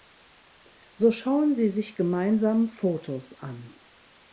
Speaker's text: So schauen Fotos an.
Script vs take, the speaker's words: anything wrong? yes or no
yes